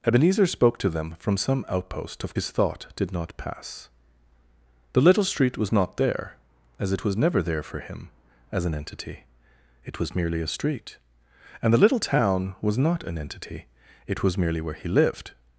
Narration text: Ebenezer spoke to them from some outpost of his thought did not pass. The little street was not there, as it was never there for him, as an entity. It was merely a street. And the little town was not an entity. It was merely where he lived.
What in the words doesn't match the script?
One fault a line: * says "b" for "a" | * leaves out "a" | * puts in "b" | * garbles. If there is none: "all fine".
all fine